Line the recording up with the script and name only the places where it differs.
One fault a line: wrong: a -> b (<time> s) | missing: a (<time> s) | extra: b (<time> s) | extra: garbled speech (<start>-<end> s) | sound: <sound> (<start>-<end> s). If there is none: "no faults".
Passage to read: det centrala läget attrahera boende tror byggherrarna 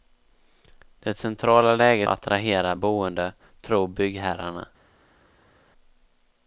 no faults